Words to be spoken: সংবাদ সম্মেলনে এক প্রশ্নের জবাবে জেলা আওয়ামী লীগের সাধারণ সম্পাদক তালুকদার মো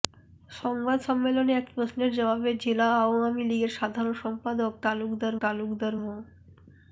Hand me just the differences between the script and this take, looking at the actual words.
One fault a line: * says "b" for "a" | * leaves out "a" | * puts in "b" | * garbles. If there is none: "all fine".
* puts in "তালুকদার"